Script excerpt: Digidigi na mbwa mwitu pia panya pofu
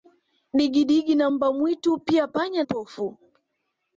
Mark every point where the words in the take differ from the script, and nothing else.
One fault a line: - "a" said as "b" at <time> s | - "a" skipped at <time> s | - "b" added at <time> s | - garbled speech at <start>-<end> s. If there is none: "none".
none